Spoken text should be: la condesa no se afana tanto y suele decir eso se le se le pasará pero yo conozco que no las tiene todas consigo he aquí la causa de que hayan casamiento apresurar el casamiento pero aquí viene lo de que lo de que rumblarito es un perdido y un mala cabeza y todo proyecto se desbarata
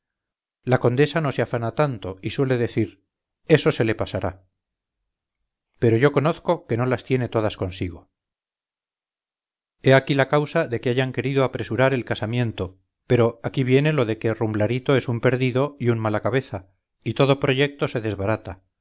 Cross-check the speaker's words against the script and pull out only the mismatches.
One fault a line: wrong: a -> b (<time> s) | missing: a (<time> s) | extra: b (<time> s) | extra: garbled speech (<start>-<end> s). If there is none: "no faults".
missing: se le (3.9 s)
wrong: casamiento -> querido (11.1 s)
missing: lo de que (14.3 s)